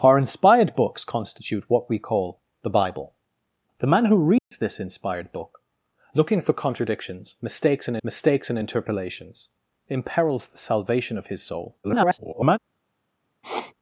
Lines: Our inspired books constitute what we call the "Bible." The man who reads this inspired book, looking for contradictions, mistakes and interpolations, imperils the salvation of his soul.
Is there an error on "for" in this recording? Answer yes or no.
no